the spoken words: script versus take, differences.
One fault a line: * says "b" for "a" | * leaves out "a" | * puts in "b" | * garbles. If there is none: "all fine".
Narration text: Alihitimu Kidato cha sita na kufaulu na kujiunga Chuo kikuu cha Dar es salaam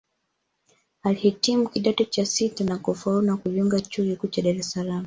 all fine